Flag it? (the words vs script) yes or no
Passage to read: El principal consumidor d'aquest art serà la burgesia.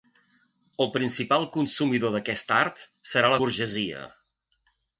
no